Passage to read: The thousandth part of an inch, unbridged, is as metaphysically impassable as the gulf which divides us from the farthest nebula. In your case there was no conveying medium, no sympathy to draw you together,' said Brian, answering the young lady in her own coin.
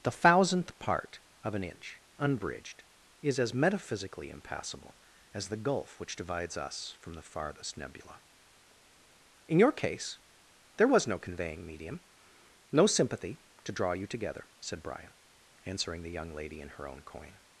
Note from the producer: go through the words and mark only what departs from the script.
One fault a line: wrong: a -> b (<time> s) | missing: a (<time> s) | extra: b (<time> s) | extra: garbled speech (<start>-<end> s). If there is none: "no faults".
no faults